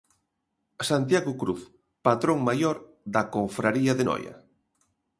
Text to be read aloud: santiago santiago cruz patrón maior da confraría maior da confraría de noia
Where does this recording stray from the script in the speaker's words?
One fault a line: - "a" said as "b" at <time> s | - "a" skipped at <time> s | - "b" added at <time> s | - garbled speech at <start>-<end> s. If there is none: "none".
- "santiago" skipped at 1.4 s
- "maior da confraría" skipped at 3.9 s